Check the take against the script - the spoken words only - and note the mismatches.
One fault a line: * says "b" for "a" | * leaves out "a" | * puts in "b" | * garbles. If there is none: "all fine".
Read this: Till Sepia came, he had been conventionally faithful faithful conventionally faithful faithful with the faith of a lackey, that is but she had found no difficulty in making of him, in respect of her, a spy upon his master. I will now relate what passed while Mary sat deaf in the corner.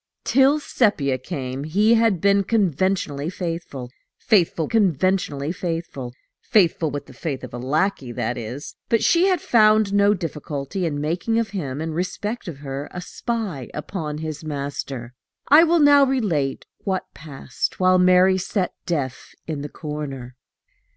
all fine